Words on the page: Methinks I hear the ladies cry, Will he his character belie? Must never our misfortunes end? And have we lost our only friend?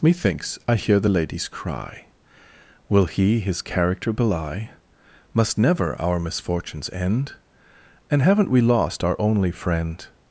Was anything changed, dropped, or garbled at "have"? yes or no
yes